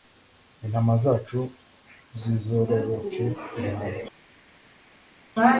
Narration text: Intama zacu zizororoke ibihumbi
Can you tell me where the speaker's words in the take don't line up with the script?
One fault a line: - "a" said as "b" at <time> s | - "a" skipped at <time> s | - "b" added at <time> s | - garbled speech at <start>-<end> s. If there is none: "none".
none